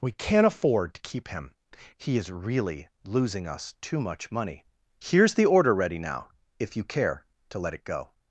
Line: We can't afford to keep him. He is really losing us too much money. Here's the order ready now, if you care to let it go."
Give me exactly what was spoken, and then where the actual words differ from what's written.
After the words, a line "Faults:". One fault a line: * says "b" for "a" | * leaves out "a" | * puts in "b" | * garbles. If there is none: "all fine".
We can't afford to keep him. He is really losing us too much money. Here's the order ready now, if you care to let it go."
Faults:
all fine